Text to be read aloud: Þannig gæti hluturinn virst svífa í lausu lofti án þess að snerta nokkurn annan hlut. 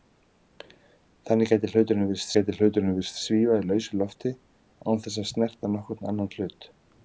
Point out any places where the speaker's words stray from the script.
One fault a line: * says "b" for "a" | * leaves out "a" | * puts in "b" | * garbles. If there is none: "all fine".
* puts in "gæti hluturinn virst"